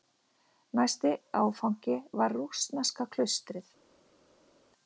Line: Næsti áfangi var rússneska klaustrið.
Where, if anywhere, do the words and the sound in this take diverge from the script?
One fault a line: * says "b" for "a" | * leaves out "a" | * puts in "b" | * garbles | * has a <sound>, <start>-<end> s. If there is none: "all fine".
all fine